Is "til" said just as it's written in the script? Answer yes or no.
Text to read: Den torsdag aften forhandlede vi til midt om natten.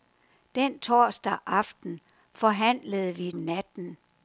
no